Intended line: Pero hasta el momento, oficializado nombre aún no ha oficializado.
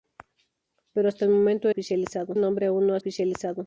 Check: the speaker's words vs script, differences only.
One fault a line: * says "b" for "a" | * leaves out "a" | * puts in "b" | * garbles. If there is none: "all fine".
all fine